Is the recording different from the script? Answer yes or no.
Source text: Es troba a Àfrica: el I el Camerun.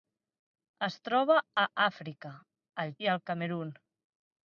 no